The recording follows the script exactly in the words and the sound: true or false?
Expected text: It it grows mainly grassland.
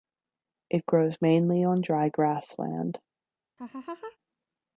false